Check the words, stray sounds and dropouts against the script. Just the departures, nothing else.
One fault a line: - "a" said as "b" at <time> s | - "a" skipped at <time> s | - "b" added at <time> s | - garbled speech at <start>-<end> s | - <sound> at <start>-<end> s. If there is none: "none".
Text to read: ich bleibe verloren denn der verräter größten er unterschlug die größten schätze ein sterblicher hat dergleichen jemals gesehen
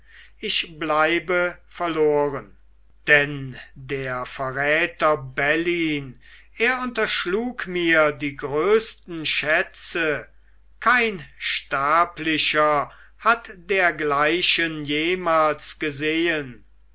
- "größten" said as "bellyn" at 5.2 s
- "mir" added at 7.7 s
- "ein" said as "kein" at 10.8 s